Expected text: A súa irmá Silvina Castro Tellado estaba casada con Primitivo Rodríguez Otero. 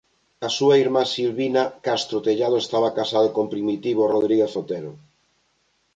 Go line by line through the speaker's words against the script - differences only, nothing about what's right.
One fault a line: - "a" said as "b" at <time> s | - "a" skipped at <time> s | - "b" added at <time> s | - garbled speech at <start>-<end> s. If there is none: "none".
none